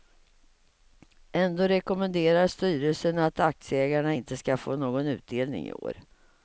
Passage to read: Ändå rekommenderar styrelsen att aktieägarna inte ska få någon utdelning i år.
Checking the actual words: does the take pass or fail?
pass